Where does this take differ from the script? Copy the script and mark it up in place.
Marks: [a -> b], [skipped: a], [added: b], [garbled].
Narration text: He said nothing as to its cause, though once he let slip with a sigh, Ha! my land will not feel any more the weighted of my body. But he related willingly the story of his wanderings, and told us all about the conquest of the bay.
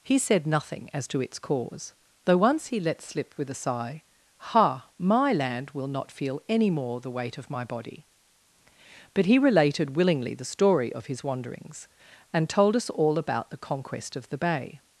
He said nothing as to its cause, though once he let slip with a sigh, Ha! my land will not feel any more the [weighted -> weight] of my body. But he related willingly the story of his wanderings, and told us all about the conquest of the bay.